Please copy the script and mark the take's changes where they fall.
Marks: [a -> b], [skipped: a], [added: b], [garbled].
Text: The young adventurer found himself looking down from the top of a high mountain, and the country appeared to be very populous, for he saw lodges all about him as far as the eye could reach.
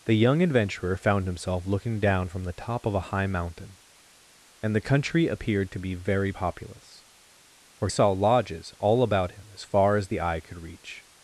The young adventurer found himself looking down from the top of a high mountain, and the country appeared to be very populous, for [skipped: he] saw lodges all about him as far as the eye could reach.